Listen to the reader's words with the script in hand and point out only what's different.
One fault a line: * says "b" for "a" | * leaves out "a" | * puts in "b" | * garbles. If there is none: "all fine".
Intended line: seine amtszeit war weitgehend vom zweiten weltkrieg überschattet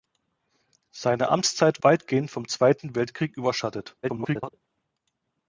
* leaves out "war"
* garbles